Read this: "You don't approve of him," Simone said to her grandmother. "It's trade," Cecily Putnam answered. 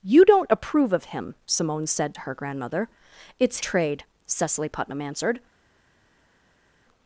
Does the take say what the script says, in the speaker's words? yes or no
yes